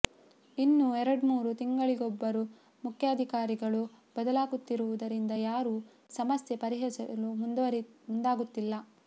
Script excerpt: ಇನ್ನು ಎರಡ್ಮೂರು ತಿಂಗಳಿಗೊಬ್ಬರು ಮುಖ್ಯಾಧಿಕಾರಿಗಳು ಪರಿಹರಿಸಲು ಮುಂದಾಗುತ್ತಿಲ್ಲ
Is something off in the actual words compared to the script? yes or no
yes